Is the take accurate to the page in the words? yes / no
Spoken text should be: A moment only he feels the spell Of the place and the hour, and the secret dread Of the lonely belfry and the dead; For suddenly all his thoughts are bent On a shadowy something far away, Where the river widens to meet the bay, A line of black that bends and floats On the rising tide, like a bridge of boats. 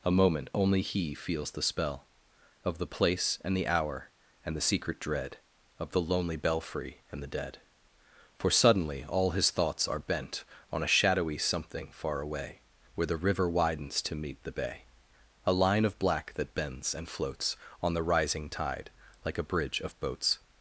yes